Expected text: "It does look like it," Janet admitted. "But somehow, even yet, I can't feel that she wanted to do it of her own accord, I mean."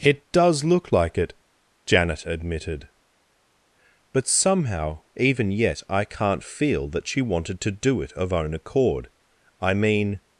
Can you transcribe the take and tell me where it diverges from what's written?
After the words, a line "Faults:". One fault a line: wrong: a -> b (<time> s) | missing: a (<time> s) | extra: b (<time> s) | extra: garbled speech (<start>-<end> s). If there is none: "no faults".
"It does look like it," Janet admitted. "But somehow, even yet, I can't feel that she wanted to do it of own accord, I mean."
Faults:
missing: her (8.3 s)